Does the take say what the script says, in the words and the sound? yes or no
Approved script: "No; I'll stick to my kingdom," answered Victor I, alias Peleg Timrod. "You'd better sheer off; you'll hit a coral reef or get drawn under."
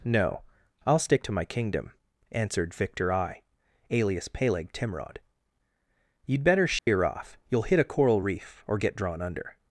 no